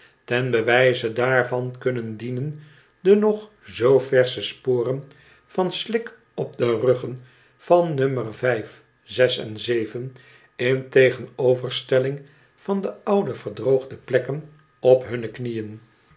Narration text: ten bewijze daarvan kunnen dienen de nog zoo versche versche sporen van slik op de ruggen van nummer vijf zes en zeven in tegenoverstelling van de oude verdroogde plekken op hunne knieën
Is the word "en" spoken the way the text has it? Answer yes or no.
yes